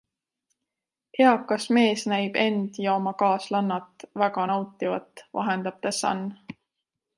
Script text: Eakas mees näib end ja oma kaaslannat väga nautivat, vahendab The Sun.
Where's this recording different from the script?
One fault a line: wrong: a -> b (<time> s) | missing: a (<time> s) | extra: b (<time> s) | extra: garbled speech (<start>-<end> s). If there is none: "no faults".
no faults